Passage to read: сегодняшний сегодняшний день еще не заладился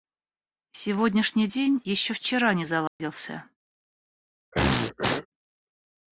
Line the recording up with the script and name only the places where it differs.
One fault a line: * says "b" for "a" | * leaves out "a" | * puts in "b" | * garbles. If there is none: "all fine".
* leaves out "сегодняшний"
* puts in "вчера"